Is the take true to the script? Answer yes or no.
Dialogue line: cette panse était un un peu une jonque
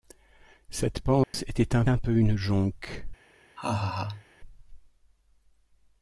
yes